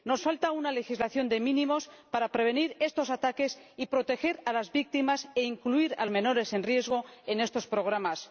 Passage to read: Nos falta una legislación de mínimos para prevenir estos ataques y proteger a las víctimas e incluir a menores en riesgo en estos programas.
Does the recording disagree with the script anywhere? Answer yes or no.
no